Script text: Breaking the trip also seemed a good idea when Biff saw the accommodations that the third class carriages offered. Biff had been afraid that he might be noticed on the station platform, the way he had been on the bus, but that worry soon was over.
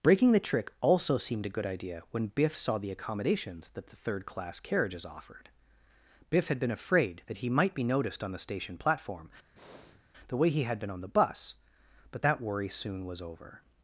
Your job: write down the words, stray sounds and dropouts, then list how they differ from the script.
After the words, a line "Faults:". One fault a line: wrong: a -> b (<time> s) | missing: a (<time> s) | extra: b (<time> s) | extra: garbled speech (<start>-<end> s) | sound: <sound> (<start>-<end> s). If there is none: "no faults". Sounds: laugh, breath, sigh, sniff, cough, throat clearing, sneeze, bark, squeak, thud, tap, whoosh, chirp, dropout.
Breaking the trick also seemed a good idea when Biff saw the accommodations that the third class carriages offered. Biff had been afraid that he might be noticed on the station platform, the way he had been on the bus, but that worry soon was over.
Faults:
wrong: trip -> trick (0.4 s)
sound: breath (9.6-10.0 s)